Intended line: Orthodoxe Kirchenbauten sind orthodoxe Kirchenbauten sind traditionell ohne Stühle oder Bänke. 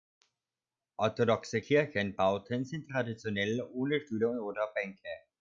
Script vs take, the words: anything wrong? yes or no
yes